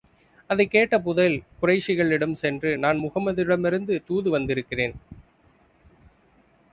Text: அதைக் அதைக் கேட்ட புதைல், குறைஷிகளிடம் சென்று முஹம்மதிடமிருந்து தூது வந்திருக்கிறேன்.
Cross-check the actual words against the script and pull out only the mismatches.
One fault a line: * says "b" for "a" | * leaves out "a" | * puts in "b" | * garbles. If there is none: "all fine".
* leaves out "அதைக்"
* puts in "நான்"